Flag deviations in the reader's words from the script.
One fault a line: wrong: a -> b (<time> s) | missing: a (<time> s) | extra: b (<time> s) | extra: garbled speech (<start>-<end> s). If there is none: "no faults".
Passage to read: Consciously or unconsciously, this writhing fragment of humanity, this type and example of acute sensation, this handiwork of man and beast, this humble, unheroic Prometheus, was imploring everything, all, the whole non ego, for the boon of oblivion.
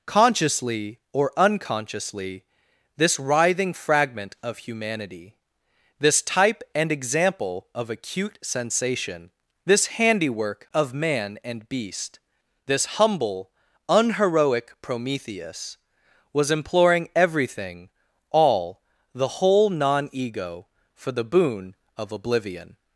no faults